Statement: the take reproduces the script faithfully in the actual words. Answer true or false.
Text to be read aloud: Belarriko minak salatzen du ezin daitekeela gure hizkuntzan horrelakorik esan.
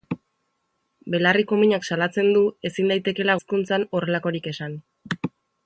false